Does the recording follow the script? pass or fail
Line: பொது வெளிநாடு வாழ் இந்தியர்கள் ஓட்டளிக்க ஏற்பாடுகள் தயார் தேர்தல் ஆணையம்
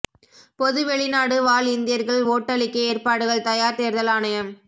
pass